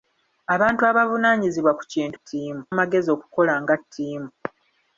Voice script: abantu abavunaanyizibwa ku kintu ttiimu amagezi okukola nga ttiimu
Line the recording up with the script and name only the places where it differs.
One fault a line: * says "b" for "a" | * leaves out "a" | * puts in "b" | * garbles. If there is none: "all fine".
all fine